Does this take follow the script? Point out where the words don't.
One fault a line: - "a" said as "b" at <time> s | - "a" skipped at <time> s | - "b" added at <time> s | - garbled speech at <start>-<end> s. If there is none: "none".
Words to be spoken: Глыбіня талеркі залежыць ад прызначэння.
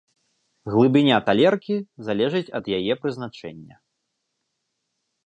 - "яе" added at 2.8 s